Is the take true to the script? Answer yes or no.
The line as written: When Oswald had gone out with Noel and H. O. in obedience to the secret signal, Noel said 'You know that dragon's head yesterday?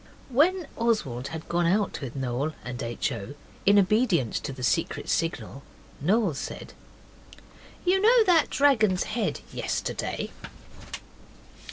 yes